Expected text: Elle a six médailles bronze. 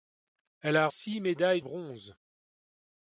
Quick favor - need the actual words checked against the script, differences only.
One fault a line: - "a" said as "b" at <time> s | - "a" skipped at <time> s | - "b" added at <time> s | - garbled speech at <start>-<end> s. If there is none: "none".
none